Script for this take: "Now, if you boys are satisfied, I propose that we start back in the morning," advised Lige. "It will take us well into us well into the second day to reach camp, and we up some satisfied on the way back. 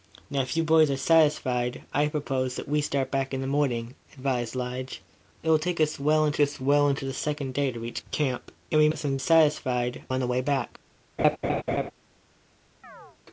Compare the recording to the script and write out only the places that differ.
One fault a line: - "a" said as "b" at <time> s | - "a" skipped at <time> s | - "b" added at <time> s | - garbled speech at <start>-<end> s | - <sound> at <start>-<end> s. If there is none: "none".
- laugh at 11.2-11.9 s
- chirp at 12.8-13.2 s